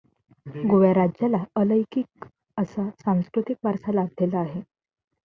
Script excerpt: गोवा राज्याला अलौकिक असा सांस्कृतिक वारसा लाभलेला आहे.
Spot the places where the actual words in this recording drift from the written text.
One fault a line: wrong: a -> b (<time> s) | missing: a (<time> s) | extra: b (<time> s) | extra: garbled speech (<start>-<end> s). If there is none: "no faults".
no faults